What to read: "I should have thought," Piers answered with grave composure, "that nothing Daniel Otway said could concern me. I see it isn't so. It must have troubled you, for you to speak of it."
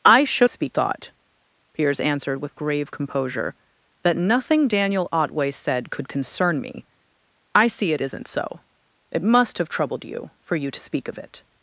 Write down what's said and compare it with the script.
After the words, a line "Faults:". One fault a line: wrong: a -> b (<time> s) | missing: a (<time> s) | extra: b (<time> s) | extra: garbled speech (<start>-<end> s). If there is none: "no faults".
"I should speak thought," Piers answered with grave composure, "that nothing Daniel Otway said could concern me. I see it isn't so. It must have troubled you, for you to speak of it."
Faults:
wrong: have -> speak (0.5 s)